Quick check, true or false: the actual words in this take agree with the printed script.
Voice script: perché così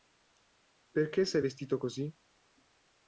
false